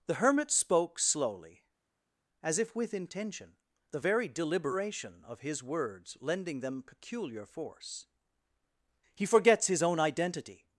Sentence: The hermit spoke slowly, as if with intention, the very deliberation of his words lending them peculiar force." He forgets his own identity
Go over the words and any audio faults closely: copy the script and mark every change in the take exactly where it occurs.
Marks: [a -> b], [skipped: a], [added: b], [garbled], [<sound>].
The hermit spoke slowly, as if with intention, the very deliberation of his words lending them peculiar force." He forgets his own identity